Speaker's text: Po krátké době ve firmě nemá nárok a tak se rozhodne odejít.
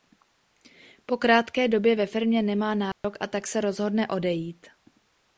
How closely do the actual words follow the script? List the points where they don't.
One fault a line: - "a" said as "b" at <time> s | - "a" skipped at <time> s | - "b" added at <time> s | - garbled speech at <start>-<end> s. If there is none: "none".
none